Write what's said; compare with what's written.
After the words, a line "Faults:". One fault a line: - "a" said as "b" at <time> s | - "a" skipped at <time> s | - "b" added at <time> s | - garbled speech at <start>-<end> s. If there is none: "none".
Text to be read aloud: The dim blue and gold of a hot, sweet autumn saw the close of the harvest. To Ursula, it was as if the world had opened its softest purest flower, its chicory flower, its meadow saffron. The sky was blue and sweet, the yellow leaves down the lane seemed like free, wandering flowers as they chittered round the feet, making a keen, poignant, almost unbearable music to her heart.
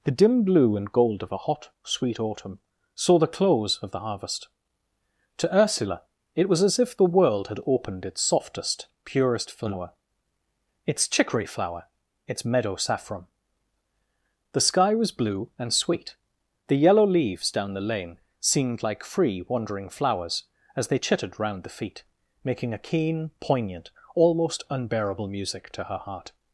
The dim blue and gold of a hot, sweet autumn saw the close of the harvest. To Ursula, it was as if the world had opened its softest purest flower, its chicory flower, its meadow saffron. The sky was blue and sweet, the yellow leaves down the lane seemed like free, wandering flowers as they chittered round the feet, making a keen, poignant, almost unbearable music to her heart.
Faults:
none